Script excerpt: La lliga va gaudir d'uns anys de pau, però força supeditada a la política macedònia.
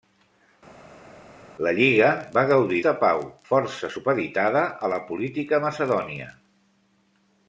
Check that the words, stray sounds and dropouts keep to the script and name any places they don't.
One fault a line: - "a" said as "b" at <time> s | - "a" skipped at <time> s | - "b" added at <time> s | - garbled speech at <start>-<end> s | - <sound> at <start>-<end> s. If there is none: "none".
- "d'uns anys" skipped at 2.8 s
- "però" skipped at 3.2 s